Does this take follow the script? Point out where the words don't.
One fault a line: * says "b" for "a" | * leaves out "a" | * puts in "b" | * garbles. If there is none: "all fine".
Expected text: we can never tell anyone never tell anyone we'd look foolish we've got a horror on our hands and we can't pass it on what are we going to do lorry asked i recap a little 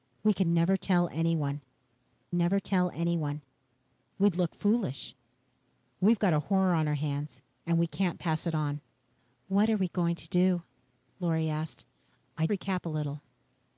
all fine